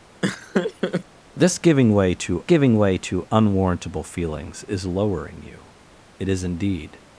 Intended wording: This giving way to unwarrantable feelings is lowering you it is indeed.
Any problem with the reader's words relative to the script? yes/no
yes